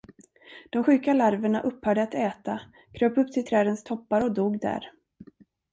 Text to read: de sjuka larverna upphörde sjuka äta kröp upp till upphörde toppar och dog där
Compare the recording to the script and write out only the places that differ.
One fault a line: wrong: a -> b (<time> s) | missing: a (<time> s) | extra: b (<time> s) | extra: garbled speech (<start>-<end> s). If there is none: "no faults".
wrong: sjuka -> att (2.0 s)
wrong: upphörde -> trädens (3.5 s)